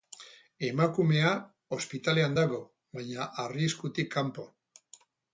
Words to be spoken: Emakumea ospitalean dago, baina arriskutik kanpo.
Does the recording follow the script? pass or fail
pass